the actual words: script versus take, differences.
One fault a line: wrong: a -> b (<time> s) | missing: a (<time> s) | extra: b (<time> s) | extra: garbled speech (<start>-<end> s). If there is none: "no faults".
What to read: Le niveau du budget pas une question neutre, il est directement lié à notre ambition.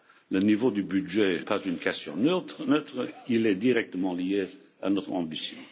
no faults